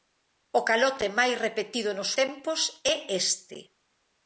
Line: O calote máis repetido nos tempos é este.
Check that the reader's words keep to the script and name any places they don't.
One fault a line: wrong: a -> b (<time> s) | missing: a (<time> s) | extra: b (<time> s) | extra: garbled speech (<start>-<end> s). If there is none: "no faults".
no faults